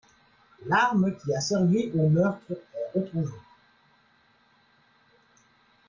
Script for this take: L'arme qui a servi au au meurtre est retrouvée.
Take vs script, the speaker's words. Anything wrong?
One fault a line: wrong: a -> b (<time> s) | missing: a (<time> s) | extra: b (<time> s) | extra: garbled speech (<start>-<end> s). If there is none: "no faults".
missing: au (2.1 s)